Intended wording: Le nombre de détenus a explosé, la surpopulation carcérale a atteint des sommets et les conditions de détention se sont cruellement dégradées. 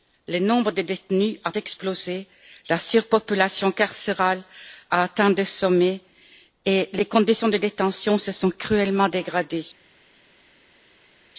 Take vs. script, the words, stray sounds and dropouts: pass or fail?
pass